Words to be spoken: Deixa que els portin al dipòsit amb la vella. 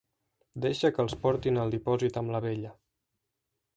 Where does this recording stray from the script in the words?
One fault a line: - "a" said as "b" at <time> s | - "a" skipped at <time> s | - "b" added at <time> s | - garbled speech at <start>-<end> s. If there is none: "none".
none